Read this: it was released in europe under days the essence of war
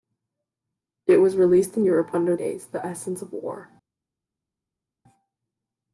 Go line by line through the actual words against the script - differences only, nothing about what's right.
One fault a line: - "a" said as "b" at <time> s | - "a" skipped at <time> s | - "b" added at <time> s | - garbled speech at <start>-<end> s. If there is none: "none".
none